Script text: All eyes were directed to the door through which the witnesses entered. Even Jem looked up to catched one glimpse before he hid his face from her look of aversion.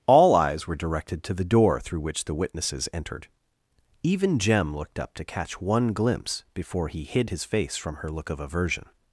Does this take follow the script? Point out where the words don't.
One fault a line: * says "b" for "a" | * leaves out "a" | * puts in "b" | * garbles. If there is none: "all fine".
* says "catch" for "catched"